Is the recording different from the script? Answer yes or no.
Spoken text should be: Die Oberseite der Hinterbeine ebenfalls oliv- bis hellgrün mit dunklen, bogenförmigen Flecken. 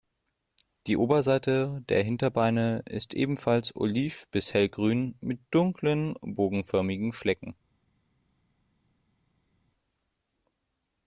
yes